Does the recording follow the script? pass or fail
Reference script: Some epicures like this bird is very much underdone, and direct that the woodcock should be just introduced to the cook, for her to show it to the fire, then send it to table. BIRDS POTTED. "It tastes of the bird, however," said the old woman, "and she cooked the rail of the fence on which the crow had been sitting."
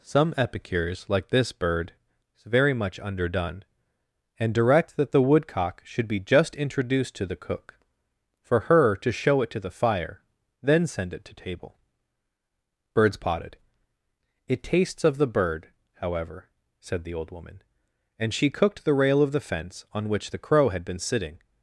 pass